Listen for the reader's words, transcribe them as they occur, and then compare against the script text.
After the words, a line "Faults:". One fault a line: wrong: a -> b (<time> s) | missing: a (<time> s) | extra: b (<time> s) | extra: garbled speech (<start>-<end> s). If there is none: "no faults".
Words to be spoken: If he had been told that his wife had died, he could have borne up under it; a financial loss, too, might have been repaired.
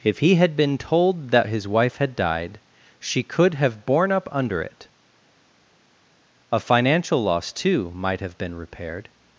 If he had been told that his wife had died, she could have borne up under it; a financial loss, too, might have been repaired.
Faults:
wrong: he -> she (3.0 s)